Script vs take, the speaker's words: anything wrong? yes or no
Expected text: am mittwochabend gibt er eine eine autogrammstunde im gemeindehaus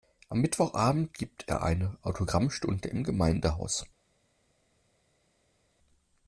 yes